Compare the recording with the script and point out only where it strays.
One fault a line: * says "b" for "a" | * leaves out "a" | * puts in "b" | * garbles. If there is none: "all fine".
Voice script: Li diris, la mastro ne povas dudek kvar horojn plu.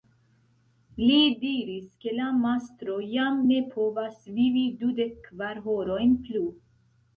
* puts in "ke"
* puts in "jam"
* puts in "vivi"